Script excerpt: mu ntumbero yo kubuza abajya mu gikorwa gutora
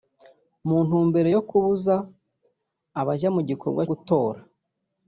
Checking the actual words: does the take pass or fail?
pass